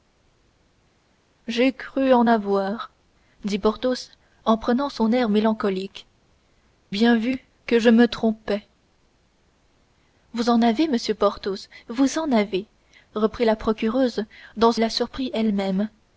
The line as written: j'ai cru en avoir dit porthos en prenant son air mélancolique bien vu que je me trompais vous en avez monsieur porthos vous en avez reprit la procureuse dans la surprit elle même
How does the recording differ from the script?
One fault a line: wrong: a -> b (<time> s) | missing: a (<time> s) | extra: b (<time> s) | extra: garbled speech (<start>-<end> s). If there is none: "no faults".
no faults